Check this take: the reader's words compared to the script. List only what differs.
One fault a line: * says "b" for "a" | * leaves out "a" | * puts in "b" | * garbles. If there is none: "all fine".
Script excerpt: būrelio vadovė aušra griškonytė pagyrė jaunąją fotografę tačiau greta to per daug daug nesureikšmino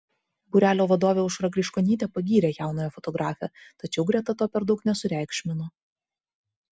* leaves out "daug"